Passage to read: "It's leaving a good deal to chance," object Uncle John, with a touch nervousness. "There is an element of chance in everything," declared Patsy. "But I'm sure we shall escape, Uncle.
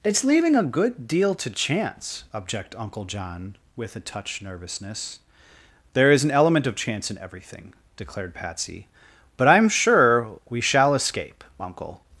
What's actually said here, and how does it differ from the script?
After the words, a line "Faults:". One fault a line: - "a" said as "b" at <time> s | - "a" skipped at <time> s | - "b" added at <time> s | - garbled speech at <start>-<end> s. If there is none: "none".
"It's leaving a good deal to chance," object Uncle John, with a touch nervousness. "There is an element of chance in everything," declared Patsy. "But I'm sure we shall escape, Uncle.
Faults:
none